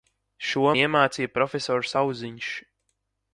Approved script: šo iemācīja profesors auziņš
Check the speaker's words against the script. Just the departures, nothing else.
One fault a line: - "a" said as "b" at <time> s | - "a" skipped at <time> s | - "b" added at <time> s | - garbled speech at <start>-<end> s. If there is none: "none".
none